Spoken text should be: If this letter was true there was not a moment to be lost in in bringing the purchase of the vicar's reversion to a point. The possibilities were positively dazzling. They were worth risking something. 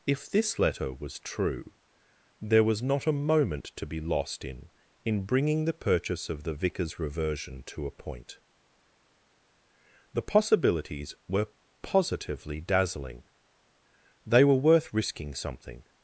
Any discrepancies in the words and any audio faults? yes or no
no